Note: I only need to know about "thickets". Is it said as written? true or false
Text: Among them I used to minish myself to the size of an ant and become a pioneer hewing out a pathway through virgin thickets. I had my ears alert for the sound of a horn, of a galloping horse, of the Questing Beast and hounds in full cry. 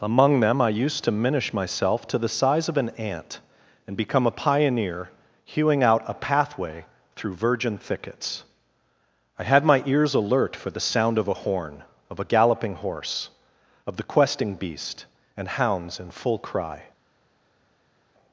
true